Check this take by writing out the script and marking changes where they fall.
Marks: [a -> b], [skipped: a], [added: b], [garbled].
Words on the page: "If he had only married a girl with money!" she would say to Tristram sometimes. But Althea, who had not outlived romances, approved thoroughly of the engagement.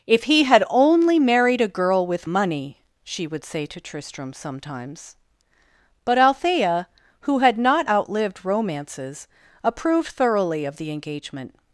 "If he had only married a girl with money!" she would say to Tristram sometimes. But Althea, who had not outlived romances, approved thoroughly of the engagement.